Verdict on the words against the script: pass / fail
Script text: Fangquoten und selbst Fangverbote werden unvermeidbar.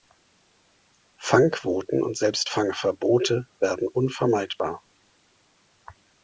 pass